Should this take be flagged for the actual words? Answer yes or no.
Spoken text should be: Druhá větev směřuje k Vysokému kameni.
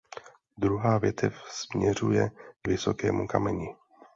no